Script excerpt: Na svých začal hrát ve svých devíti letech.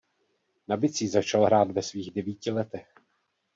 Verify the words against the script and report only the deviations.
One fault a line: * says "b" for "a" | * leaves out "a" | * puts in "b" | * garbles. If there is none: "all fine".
* says "bicí" for "svých"